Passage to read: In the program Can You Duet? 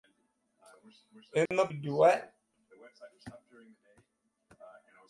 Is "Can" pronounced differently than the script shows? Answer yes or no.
yes